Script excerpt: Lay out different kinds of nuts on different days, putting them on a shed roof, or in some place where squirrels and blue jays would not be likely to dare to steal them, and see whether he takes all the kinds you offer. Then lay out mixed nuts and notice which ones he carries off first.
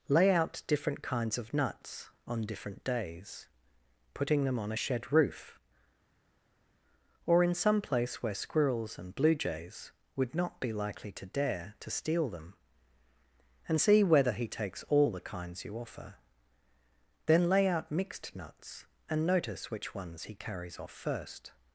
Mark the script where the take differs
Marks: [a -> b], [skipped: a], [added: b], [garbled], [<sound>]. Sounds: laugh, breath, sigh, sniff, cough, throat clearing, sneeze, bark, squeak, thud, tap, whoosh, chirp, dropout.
Lay out different kinds of nuts on different days, putting them on a shed roof, or in some place where squirrels and blue jays would not be likely to dare to steal them, and see whether he takes all the kinds you offer. Then lay out mixed nuts and notice which ones he carries off first.